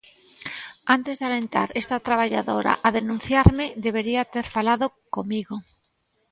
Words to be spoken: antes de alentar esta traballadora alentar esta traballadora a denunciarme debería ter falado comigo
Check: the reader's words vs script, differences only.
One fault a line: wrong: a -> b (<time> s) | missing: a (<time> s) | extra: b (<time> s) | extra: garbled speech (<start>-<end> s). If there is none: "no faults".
missing: alentar esta traballadora (2.7 s)